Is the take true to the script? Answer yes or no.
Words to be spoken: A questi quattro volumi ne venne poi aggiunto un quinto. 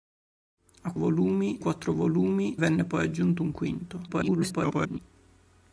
no